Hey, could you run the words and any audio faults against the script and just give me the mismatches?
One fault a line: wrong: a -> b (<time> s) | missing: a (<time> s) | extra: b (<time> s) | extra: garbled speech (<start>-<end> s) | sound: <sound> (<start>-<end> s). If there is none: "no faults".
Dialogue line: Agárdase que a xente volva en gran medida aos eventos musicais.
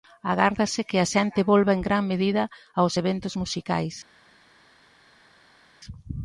no faults